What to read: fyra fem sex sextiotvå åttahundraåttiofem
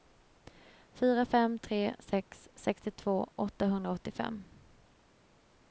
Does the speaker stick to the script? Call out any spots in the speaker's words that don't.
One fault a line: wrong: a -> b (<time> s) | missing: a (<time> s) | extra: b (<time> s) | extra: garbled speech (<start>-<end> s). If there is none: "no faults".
extra: tre (1.6 s)